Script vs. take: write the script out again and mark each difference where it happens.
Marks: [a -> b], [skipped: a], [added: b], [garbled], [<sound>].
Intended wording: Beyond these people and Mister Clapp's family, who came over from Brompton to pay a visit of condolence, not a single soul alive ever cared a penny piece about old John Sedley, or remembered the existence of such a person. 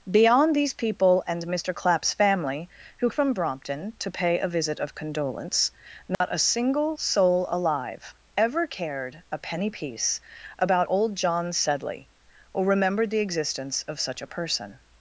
Beyond these people and Mister Clapp's family, who [skipped: came over] from Brompton to pay a visit of condolence, not [dropout] a single soul alive ever cared a penny piece about old John Sedley, or remembered the existence of such a person.